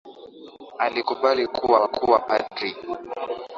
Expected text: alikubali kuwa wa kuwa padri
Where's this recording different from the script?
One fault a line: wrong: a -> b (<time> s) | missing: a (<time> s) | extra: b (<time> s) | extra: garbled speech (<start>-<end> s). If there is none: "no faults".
no faults